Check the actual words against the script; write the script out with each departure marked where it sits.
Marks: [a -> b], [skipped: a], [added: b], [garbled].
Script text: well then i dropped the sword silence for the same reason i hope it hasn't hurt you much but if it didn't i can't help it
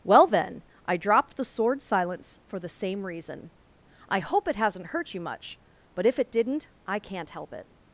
well then i dropped the sword silence for the same reason i hope it hasn't hurt you much but if it didn't i can't help it